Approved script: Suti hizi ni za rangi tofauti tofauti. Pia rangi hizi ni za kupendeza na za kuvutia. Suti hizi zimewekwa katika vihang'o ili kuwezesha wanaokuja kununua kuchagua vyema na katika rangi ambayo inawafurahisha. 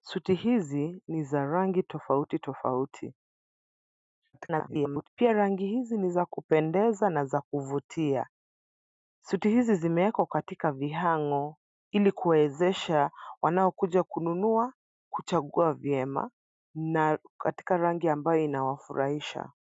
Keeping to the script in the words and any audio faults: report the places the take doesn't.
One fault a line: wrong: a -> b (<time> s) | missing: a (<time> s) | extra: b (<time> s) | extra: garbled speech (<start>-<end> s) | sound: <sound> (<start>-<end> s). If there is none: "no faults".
extra: garbled speech (4.3-5.1 s)